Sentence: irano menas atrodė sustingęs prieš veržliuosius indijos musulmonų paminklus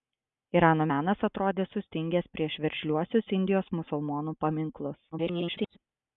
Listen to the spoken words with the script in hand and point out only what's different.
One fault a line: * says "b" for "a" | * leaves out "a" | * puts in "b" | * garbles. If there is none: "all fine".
* garbles